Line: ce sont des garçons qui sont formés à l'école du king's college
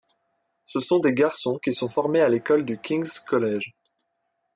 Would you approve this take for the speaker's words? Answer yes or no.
yes